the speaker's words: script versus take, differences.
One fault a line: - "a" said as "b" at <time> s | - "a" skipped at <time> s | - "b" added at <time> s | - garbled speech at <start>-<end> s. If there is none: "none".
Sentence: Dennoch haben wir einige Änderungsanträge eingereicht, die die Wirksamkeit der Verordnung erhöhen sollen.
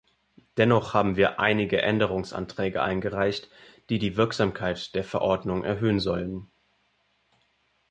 none